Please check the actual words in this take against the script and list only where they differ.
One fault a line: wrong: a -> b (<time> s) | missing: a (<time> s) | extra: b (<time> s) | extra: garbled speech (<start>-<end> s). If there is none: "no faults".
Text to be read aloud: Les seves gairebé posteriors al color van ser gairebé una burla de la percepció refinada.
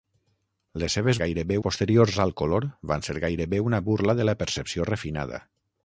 no faults